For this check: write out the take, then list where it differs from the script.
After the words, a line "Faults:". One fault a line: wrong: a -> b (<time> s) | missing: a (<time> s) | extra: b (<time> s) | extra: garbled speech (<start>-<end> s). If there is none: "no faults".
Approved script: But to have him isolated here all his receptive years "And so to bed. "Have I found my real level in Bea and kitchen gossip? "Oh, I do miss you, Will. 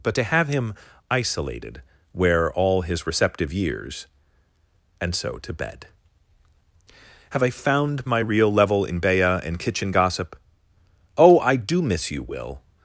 But to have him isolated where all his receptive years "And so to bed. "Have I found my real level in Bea and kitchen gossip? "Oh, I do miss you, Will.
Faults:
wrong: here -> where (2.1 s)